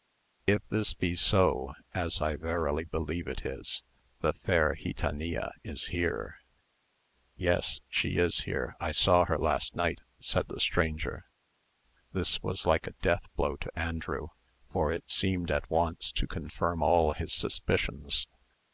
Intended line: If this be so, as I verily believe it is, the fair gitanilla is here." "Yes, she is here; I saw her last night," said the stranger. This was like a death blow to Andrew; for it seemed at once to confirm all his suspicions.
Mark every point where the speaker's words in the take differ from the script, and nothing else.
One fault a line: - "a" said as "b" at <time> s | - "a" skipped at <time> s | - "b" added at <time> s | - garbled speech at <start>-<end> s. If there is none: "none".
none